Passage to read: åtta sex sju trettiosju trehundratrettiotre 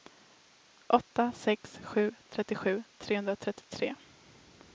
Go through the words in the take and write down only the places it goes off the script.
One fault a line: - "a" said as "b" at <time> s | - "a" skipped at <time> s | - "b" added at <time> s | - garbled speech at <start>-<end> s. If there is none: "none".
none